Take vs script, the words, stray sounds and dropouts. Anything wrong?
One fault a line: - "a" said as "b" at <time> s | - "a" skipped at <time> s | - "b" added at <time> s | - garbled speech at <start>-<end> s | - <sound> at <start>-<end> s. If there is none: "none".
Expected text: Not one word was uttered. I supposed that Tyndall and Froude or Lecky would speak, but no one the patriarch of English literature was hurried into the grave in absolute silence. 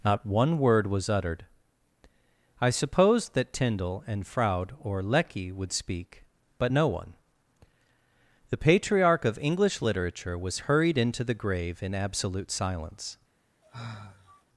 - sigh at 13.6-14.4 s